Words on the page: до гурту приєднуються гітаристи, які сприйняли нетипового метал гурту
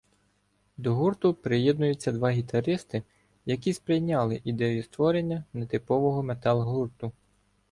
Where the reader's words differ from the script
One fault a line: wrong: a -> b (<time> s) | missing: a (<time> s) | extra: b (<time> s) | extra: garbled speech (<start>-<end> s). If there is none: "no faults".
extra: два (2.1 s)
extra: ідею створення (4.4 s)